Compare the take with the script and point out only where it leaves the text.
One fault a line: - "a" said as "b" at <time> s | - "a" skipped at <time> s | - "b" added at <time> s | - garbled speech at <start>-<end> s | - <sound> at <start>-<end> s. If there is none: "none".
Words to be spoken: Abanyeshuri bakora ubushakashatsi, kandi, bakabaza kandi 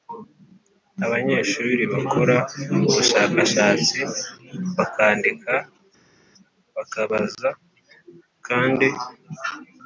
- "kandi" said as "bakandika" at 4.8 s